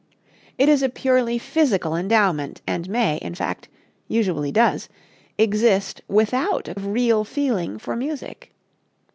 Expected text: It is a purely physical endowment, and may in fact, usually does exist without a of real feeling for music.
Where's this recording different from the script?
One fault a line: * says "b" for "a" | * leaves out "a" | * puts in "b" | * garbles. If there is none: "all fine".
all fine